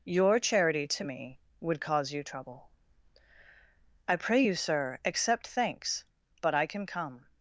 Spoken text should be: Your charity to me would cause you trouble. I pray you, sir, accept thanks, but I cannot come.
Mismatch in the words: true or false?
true